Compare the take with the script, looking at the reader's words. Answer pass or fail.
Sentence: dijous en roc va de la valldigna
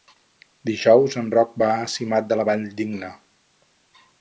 fail